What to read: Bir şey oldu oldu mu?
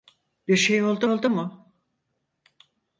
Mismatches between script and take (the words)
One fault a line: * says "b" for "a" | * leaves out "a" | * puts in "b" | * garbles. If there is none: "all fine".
all fine